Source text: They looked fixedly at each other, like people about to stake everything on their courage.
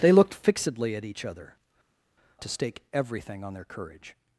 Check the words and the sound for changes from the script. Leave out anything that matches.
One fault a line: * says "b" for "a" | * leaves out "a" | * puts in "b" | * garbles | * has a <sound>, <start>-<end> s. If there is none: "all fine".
* leaves out "like people about"